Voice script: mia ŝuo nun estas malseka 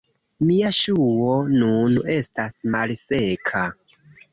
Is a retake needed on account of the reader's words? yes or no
no